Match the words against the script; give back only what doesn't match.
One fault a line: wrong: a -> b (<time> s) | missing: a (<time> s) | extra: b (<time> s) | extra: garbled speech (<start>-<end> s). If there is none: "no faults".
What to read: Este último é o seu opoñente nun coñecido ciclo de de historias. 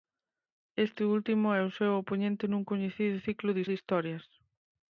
no faults